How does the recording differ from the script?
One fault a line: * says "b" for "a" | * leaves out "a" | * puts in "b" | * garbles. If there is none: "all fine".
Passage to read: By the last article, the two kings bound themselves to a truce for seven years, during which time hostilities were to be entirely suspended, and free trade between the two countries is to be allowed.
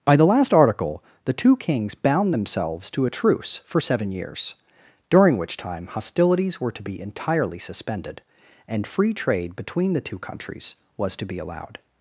* says "was" for "is"